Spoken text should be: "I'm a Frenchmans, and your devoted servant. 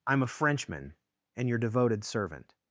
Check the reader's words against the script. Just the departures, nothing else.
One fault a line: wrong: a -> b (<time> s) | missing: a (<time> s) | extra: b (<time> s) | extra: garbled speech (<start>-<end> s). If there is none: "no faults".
wrong: Frenchmans -> Frenchman (0.3 s)